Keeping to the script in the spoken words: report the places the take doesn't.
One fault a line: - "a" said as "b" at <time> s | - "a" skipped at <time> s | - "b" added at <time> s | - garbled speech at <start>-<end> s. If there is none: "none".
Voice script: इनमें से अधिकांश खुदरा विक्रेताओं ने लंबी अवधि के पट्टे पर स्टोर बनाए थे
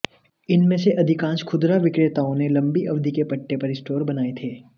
none